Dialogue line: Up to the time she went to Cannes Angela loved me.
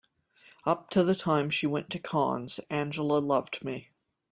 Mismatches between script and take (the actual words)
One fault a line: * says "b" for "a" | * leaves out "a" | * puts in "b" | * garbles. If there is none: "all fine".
all fine